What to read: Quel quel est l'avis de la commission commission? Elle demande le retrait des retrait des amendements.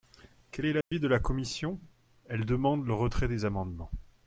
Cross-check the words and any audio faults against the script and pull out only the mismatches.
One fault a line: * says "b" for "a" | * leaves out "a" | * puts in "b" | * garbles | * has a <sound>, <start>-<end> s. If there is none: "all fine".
* leaves out "quel"
* has a dropout, 0.8-0.9 s
* leaves out "commission"
* leaves out "retrait des"